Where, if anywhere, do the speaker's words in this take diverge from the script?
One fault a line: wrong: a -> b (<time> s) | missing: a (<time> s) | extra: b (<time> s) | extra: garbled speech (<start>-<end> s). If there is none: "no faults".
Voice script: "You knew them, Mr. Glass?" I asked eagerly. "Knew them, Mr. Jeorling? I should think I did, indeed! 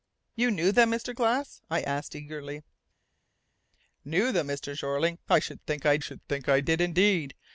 extra: should think I (6.0 s)